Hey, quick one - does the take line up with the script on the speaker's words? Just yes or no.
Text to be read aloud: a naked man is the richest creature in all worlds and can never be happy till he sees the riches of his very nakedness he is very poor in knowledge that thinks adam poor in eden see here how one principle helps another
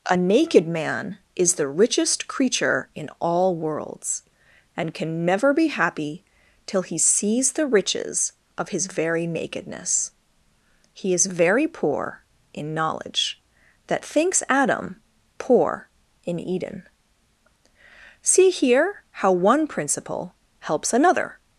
yes